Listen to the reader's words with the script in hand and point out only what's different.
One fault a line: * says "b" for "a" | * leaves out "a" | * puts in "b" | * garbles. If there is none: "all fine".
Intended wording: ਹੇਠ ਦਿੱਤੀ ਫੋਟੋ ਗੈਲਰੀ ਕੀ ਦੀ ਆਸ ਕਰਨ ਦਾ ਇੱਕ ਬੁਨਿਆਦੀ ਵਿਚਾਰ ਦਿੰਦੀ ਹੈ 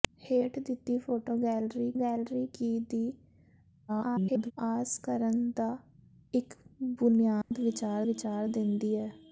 * puts in "ਗੈਲਰੀ"
* garbles
* puts in "ਵਿਚਾਰ"